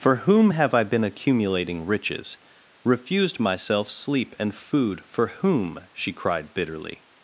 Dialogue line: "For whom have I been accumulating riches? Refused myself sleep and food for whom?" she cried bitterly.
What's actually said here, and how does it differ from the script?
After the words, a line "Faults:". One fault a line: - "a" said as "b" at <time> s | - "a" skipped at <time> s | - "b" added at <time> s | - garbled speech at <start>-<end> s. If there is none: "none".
"For whom have I been accumulating riches? Refused myself sleep and food for whom?" she cried bitterly.
Faults:
none